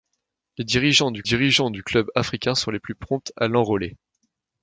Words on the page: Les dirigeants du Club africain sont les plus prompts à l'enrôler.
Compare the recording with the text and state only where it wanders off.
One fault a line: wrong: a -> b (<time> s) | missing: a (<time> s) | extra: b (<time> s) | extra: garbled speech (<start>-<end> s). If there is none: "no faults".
extra: dirigeants du (1.2 s)